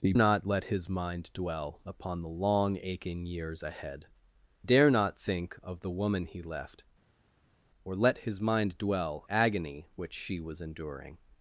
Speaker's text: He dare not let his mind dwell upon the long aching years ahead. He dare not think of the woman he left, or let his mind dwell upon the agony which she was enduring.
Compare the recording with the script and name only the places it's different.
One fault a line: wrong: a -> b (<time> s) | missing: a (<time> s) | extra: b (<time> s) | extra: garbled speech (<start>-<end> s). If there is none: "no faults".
missing: dare (0.1 s)
missing: He (4.1 s)
missing: upon the (9.3 s)